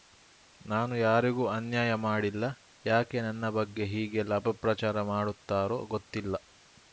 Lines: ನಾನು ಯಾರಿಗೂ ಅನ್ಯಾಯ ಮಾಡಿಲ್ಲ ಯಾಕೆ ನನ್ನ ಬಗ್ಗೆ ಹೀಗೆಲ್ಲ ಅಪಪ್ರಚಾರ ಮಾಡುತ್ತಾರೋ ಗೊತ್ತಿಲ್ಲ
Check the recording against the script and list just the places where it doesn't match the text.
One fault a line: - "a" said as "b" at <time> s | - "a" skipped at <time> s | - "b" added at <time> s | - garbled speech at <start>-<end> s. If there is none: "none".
none